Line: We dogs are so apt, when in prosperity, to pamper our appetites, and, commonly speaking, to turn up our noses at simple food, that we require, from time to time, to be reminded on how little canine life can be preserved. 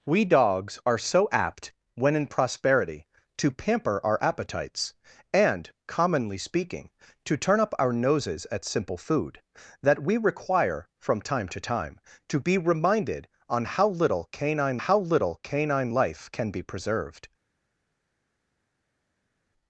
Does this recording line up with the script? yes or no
no